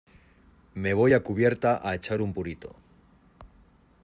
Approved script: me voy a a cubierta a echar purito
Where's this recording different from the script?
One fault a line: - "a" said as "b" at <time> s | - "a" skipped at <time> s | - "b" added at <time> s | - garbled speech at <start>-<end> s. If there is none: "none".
- "a" skipped at 1.2 s
- "un" added at 2.2 s